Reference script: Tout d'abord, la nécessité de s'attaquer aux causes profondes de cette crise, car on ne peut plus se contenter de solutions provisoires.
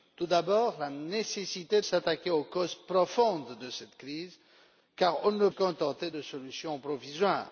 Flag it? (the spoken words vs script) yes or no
yes